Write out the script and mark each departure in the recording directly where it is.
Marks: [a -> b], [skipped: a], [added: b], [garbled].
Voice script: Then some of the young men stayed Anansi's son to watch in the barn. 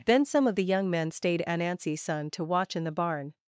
Then some of the young men stayed Anansi's son to watch in the barn.